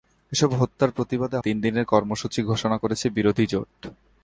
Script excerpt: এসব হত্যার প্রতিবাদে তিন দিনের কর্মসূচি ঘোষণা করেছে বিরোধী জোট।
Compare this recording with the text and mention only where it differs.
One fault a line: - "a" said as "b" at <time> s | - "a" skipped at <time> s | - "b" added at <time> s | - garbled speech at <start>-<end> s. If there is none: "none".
none